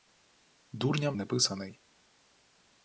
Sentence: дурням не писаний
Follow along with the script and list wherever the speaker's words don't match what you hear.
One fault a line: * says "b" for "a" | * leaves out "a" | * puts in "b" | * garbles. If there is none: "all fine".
all fine